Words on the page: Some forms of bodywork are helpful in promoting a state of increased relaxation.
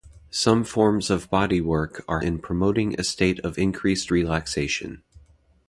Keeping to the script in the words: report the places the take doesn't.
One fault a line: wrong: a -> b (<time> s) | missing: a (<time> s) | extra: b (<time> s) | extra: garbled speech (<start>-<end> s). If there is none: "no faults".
missing: helpful (2.2 s)